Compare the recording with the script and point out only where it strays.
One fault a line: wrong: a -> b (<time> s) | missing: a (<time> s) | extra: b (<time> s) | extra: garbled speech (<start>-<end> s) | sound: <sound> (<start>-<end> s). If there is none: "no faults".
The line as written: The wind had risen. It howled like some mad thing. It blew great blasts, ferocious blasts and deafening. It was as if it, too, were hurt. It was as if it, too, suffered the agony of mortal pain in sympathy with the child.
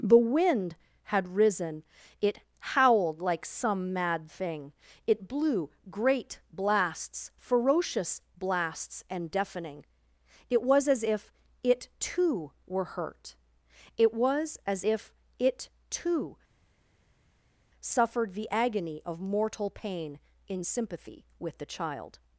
no faults